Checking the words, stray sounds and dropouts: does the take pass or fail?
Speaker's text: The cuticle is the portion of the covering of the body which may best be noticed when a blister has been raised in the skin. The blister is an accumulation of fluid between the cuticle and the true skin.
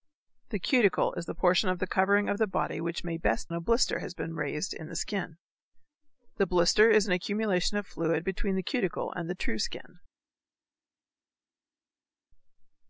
fail